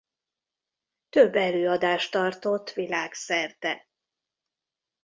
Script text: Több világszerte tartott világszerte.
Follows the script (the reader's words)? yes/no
no